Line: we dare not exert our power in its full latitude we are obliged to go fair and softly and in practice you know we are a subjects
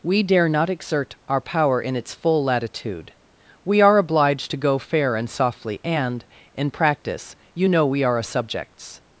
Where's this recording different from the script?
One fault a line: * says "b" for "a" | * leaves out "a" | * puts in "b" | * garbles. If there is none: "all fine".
all fine